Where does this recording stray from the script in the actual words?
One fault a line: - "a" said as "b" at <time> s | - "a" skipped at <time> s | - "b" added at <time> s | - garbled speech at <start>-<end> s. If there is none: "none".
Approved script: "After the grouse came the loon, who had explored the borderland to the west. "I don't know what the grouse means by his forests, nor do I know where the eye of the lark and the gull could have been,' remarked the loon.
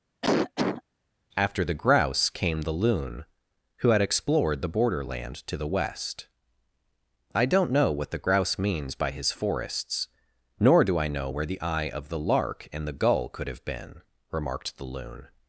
none